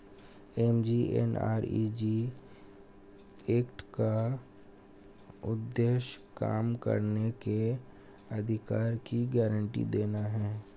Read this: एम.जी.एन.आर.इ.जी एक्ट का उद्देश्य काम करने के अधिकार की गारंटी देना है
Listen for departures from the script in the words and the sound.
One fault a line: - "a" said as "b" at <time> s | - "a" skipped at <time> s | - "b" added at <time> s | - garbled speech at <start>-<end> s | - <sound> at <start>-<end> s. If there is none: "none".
none